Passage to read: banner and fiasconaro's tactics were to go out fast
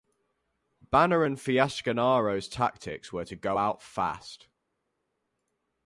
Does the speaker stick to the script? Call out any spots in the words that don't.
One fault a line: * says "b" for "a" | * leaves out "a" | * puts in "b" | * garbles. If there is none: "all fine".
all fine